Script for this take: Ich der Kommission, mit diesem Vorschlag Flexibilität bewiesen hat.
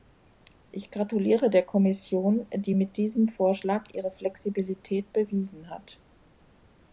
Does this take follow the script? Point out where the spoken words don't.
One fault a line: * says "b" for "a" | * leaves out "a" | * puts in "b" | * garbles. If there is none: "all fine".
* puts in "gratuliere"
* puts in "die"
* puts in "ihre"